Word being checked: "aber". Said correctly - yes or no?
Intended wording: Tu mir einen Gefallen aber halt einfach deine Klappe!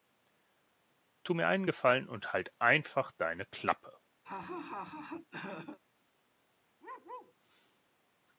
no